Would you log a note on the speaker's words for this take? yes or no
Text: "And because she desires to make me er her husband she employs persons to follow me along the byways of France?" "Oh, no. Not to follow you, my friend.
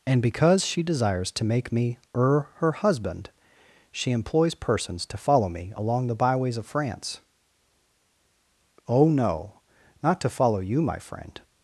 no